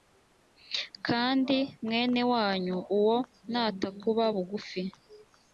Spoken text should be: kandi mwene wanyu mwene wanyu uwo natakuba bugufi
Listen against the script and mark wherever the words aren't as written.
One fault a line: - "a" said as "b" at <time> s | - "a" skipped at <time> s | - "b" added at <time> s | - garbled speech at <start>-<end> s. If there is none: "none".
- "mwene wanyu" skipped at 2.8 s